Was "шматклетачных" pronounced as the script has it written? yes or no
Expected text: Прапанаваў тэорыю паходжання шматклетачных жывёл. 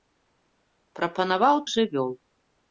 no